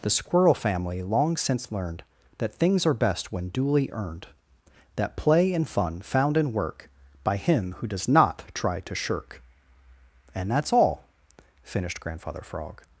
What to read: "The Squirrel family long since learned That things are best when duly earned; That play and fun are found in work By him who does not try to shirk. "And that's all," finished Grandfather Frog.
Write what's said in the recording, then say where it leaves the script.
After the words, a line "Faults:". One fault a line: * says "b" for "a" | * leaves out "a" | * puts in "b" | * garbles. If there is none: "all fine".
"The Squirrel family long since learned That things are best when duly earned; That play and fun found in work By him who does not try to shirk. "And that's all," finished Grandfather Frog.
Faults:
* leaves out "are"